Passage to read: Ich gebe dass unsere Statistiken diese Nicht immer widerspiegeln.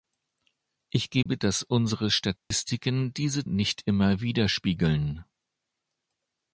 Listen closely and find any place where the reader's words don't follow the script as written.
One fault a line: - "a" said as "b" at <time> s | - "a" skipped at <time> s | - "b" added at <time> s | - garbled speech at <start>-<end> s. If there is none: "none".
none